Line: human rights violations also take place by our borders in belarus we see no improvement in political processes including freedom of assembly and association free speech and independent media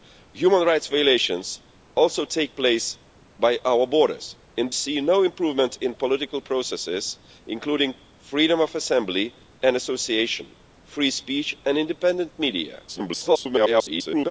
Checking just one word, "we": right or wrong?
wrong